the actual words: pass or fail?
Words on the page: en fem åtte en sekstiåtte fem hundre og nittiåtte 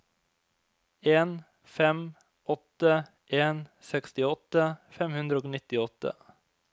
pass